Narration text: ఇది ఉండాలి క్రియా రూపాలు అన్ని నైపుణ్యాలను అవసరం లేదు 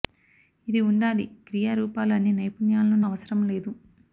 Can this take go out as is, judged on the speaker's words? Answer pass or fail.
pass